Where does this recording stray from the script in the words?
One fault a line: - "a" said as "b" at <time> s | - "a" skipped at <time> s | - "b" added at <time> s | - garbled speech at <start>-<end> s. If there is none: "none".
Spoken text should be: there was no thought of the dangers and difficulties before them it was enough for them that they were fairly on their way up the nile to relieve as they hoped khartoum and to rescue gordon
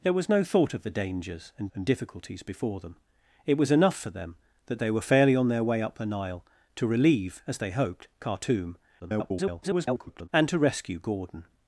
- "and" added at 1.7 s
- garbled speech at 9.0-10.3 s